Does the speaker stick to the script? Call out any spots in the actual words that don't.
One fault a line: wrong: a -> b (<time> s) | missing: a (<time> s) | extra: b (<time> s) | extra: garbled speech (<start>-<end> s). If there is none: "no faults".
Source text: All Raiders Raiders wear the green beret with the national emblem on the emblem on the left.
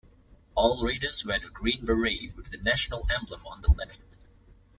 missing: Raiders (1.2 s)
missing: emblem on the (3.7 s)